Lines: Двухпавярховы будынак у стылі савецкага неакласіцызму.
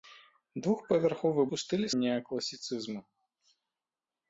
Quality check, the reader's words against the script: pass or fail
fail